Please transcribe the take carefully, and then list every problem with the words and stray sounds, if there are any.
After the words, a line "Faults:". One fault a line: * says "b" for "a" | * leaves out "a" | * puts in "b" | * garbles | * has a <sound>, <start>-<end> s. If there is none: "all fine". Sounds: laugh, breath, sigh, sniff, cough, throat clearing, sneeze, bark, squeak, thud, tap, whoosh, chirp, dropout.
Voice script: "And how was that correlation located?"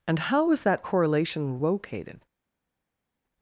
"And how was that correlation located?"
Faults:
all fine